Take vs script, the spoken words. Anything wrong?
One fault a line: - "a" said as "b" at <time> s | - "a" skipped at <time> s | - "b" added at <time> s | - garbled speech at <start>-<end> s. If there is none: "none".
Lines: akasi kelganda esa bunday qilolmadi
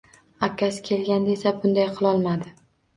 none